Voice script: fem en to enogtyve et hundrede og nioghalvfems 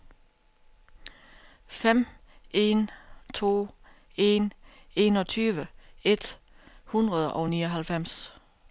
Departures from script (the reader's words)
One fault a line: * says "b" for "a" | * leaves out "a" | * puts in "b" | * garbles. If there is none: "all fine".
* puts in "en"